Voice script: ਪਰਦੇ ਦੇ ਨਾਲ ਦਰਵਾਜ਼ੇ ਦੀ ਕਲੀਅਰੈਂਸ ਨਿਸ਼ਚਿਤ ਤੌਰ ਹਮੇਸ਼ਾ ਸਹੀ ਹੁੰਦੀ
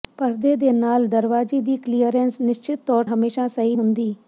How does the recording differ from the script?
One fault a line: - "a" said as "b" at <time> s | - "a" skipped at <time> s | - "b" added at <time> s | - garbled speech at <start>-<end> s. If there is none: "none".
none